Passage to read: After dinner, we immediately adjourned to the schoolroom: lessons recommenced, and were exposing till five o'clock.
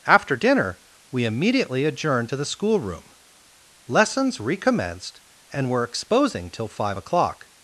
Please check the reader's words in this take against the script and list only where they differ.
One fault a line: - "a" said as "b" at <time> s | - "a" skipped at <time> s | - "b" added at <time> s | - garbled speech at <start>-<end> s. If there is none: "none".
none